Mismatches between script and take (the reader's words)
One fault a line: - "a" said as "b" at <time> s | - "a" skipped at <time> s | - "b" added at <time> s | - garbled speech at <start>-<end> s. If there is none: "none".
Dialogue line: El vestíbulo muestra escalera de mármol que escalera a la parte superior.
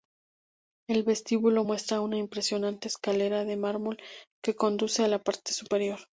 - "una impresionante" added at 2.0 s
- "escalera" said as "conduce" at 4.5 s